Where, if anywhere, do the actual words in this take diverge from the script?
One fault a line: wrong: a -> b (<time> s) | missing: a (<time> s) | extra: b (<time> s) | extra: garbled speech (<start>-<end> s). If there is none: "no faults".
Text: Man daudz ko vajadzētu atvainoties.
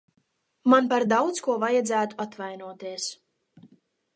extra: par (0.9 s)